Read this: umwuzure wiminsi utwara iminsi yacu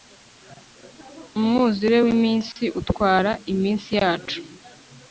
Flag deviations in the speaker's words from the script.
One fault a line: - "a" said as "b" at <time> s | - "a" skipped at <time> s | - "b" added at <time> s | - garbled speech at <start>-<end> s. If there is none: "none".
none